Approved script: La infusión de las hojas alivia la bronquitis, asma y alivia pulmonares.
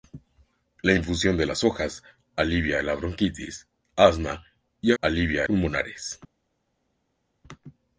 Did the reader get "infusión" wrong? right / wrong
right